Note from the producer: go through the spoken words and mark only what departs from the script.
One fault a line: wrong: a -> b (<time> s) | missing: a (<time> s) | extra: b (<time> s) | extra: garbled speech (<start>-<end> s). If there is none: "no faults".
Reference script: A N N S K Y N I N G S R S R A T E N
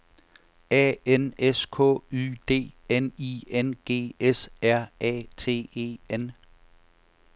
missing: N (1.4 s)
extra: D (2.5 s)
missing: S R (4.9 s)